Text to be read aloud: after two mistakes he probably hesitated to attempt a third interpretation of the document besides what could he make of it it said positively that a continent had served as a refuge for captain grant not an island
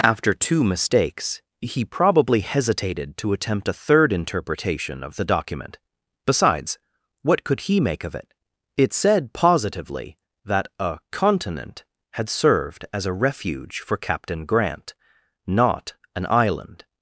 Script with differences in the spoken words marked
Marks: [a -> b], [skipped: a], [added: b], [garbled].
after two mistakes he probably hesitated to attempt a third interpretation of the document besides what could he make of it it said positively that a continent had served as a refuge for captain grant not an island